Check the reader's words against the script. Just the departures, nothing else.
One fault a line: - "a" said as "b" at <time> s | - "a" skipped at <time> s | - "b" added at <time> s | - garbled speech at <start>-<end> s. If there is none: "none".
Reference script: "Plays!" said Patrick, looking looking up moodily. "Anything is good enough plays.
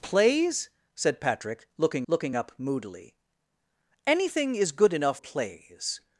none